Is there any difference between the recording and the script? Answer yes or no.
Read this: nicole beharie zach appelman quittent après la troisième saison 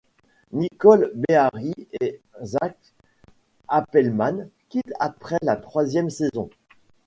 yes